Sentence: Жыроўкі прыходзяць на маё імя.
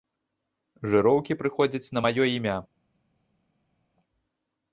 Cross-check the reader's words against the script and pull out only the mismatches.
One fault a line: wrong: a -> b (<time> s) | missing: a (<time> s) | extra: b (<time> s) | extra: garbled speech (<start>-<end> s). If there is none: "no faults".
no faults